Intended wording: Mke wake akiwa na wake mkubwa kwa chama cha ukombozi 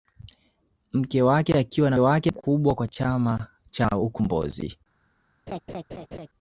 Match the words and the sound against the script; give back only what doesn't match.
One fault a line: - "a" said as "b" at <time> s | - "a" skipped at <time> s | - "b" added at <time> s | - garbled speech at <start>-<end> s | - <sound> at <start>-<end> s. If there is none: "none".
- laugh at 5.5-6.3 s